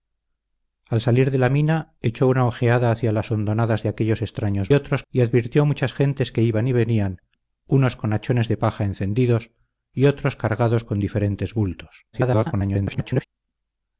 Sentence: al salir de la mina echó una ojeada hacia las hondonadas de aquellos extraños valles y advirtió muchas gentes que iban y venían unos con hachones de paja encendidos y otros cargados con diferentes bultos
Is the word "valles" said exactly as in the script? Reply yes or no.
no